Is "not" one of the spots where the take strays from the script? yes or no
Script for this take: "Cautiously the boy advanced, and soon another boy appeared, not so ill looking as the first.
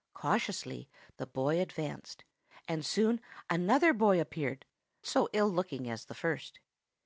yes